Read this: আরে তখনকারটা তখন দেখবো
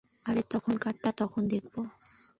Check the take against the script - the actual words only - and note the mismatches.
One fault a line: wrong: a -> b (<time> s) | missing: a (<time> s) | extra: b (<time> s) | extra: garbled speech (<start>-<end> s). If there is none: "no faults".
no faults